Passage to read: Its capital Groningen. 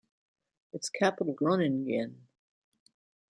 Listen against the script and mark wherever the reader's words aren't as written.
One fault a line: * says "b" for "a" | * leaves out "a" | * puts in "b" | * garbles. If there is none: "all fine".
all fine